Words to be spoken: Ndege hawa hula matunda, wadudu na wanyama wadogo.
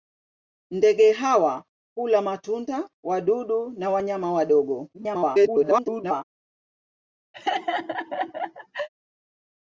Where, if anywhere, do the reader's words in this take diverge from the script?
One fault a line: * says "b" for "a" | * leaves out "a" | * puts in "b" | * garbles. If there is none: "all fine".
* garbles